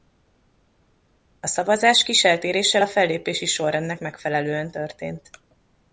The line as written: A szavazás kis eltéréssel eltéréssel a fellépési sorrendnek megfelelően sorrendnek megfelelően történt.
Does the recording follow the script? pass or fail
fail